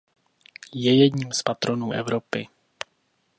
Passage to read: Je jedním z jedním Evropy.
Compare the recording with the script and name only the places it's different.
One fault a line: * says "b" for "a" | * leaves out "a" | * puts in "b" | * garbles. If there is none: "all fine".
* says "patronů" for "jedním"